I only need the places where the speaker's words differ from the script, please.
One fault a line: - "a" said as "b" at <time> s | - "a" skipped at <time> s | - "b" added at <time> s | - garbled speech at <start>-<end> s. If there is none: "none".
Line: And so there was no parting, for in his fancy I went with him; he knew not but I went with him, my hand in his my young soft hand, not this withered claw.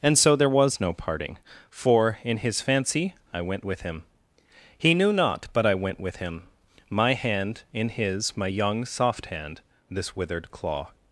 - "not" skipped at 9.6 s